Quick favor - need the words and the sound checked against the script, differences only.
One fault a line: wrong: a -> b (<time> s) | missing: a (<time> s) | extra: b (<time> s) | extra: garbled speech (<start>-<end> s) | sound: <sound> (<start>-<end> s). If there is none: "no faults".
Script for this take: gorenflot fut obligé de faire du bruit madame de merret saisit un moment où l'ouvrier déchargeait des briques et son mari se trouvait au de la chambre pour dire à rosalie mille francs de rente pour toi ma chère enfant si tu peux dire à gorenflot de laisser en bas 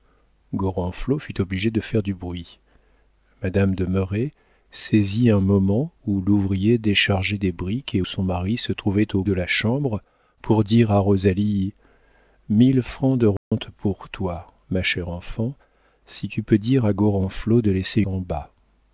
sound: dropout (13.4-13.5 s)